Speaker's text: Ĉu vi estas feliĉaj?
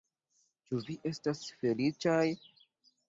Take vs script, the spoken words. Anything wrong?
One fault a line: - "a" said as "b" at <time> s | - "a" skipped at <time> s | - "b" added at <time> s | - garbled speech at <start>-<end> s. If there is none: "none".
none